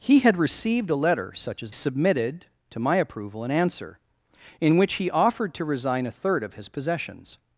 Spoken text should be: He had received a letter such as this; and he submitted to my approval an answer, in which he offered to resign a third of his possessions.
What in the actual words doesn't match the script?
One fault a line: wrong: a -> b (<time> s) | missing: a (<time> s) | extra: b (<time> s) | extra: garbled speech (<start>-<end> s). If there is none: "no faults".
missing: this and he (1.8 s)